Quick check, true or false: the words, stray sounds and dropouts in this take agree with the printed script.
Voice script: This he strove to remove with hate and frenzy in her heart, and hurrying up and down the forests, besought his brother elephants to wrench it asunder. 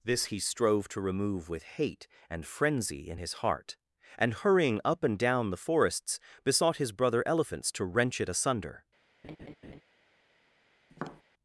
false